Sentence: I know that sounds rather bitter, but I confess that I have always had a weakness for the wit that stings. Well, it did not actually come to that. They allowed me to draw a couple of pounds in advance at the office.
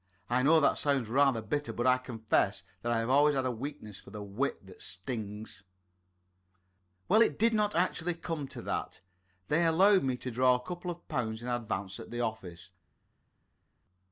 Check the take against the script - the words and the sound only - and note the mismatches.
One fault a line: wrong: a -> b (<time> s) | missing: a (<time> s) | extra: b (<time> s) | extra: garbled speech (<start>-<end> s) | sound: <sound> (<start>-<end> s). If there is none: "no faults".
no faults